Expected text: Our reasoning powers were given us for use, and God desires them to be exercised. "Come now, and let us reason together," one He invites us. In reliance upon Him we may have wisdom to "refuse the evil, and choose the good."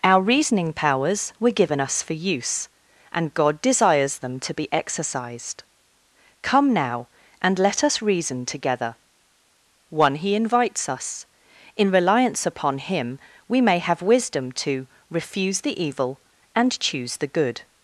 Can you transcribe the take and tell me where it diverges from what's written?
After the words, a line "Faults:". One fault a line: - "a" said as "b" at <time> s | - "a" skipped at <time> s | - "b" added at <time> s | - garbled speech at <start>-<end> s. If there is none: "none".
Our reasoning powers were given us for use, and God desires them to be exercised. "Come now, and let us reason together," one He invites us. In reliance upon Him we may have wisdom to "refuse the evil, and choose the good."
Faults:
none